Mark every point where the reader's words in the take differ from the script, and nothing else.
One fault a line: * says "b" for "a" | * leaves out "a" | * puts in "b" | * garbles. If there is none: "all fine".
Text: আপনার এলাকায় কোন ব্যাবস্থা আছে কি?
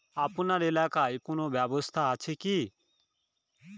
all fine